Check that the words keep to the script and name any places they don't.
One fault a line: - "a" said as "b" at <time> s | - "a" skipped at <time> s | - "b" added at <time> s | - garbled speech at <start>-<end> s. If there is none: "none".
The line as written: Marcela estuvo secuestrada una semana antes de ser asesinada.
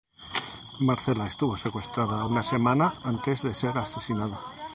none